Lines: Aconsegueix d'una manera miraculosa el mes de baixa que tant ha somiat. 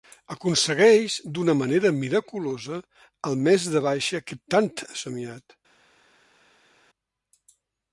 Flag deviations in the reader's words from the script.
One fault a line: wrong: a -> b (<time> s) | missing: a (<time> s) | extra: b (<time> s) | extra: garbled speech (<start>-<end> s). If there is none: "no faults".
no faults